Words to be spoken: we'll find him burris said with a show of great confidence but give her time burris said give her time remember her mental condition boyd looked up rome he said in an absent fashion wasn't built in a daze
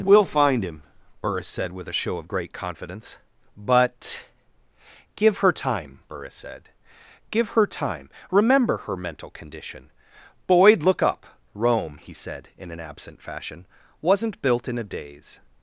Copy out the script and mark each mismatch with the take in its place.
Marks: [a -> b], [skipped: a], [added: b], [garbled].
we'll find him burris said with a show of great confidence but give her time burris said give her time remember her mental condition boyd [looked -> look] up rome he said in an absent fashion wasn't built in a daze